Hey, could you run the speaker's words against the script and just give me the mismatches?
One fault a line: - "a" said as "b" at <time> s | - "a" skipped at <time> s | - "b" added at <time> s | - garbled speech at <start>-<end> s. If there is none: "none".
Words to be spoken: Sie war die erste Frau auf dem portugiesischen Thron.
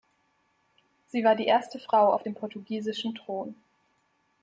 none